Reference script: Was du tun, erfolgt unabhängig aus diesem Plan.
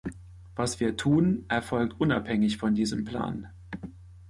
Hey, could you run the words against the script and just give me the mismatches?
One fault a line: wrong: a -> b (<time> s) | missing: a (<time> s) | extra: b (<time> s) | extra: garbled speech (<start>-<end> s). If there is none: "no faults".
wrong: du -> wir (0.8 s)
wrong: aus -> von (2.6 s)